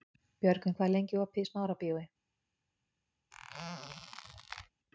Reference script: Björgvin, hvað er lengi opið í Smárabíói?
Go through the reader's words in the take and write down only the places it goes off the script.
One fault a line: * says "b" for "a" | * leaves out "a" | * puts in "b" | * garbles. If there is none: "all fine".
all fine